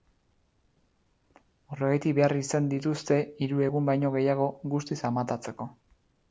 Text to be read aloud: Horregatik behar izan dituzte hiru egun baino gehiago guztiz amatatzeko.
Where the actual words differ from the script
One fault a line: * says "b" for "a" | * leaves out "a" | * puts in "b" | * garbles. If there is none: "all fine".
all fine